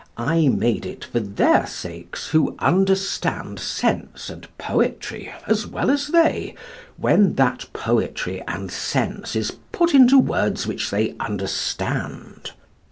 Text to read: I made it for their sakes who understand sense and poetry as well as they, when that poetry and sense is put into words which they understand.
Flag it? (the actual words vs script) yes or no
no